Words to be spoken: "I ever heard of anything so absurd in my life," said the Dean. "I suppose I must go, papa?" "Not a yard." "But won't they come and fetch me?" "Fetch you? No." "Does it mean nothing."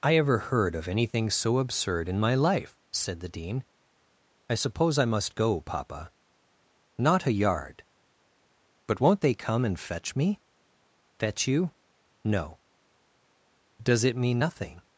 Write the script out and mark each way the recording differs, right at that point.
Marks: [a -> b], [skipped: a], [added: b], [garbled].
"I ever heard of anything so absurd in my life," said the Dean. "I suppose I must go, papa?" "Not a yard." "But won't they come and fetch me?" "Fetch you? No." "Does it mean nothing."